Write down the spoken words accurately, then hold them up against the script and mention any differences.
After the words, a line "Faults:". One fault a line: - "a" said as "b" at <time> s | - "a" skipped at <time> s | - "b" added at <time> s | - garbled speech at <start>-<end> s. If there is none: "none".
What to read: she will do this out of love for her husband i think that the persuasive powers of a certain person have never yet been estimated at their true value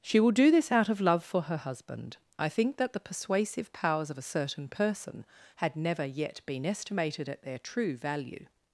she will do this out of love for her husband i think that the persuasive powers of a certain person had never yet been estimated at their true value
Faults:
- "have" said as "had" at 5.6 s